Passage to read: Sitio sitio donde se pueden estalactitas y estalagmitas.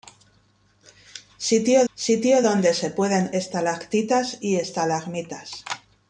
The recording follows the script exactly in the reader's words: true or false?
true